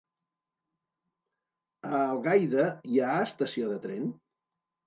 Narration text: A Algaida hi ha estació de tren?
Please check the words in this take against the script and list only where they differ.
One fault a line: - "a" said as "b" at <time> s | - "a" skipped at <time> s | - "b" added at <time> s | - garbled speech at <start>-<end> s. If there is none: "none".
none